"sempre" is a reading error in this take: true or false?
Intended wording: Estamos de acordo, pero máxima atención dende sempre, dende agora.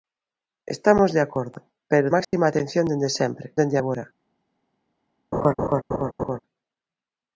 false